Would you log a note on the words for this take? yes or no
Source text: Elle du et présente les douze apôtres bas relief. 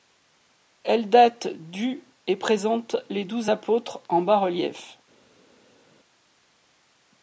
yes